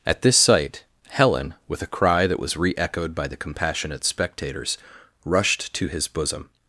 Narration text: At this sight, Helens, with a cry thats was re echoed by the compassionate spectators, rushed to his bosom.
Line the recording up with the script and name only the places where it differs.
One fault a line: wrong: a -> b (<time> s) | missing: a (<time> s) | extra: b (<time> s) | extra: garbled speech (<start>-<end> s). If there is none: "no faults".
wrong: Helens -> Helen (1.1 s)
wrong: thats -> that (2.3 s)